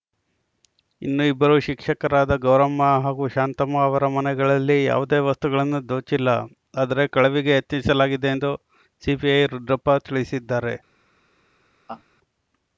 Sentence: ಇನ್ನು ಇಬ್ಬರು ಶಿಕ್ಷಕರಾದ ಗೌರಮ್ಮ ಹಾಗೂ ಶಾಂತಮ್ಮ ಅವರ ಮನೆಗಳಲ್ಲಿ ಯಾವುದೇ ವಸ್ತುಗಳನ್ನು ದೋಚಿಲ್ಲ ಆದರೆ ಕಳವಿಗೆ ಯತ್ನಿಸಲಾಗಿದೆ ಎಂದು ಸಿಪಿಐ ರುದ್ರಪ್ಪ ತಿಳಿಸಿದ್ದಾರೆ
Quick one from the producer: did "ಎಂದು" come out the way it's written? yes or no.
yes